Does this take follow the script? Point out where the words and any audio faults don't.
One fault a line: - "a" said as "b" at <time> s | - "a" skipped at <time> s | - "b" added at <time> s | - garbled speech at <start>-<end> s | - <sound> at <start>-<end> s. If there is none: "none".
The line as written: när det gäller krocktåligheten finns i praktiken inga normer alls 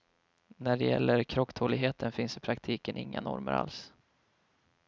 none